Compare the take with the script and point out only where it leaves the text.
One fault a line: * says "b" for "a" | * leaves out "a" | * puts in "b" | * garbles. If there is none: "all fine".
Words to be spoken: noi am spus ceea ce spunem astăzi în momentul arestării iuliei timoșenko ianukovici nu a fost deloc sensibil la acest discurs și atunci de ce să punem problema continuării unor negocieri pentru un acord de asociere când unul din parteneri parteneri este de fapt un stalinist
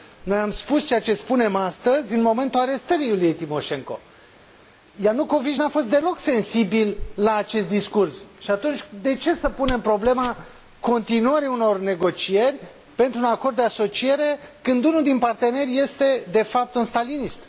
* leaves out "parteneri"